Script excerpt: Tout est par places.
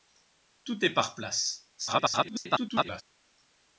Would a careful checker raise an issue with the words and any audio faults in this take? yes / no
yes